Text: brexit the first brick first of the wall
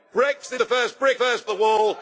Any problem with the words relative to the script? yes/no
no